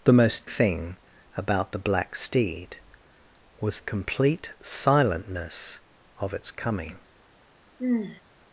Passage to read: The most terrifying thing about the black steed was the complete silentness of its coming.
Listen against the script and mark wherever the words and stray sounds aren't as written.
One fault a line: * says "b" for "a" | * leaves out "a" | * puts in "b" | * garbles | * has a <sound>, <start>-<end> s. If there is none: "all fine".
* leaves out "terrifying"
* leaves out "the"
* has a sigh, 7.8-8.2 s